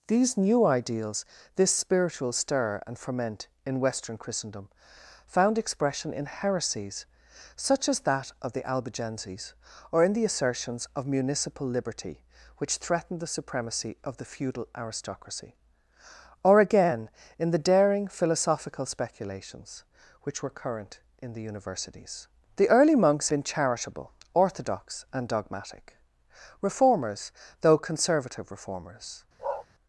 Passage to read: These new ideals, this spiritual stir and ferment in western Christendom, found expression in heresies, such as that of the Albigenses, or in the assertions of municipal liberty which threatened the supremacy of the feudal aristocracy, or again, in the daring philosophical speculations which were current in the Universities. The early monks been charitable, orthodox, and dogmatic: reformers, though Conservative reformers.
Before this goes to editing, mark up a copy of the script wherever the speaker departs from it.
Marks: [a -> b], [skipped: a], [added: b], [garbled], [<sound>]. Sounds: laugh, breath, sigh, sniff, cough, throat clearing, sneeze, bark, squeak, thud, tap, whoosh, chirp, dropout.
These new ideals, this spiritual stir and ferment in western Christendom, found expression in heresies, such as that of the Albigenses, or in the assertions of municipal liberty which threatened the supremacy of the feudal aristocracy, or again, in the daring philosophical speculations which were current in the Universities. The early monks been charitable, orthodox, and dogmatic: reformers, though Conservative reformers. [bark]